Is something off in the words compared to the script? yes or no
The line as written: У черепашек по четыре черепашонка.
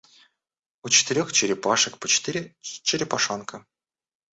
yes